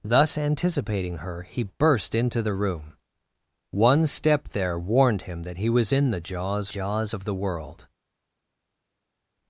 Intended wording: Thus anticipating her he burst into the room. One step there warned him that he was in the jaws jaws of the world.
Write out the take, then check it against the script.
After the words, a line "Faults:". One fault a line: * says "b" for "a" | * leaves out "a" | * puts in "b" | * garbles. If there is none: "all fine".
Thus anticipating her he burst into the room. One step there warned him that he was in the jaws jaws of the world.
Faults:
all fine